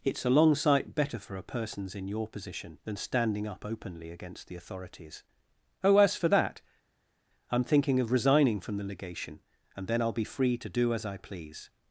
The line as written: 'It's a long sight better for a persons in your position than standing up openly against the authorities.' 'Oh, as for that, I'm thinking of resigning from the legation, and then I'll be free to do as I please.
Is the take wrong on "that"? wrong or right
right